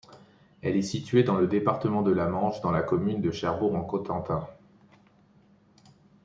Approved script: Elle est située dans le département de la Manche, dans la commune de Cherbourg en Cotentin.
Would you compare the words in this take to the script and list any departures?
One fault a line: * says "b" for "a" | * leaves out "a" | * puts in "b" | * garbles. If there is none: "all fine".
all fine